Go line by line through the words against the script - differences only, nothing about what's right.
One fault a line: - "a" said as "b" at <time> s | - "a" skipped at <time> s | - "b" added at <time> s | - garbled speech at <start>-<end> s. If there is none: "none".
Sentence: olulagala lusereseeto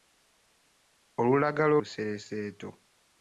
none